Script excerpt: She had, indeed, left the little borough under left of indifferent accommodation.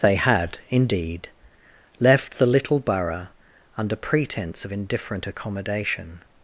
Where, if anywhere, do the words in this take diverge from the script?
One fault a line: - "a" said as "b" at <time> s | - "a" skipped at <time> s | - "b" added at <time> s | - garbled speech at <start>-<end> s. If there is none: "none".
- "She" said as "They" at 0.0 s
- "left" said as "pretence" at 4.0 s